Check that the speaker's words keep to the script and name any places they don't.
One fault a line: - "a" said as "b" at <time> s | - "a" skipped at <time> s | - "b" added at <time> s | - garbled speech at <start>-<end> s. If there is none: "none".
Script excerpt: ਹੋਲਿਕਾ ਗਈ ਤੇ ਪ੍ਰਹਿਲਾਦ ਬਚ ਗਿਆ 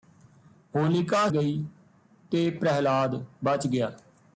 none